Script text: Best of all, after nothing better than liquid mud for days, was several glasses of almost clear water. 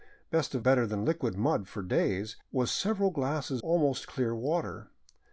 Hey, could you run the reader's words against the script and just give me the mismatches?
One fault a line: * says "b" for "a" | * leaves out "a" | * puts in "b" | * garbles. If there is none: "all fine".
* leaves out "all after nothing"
* leaves out "of"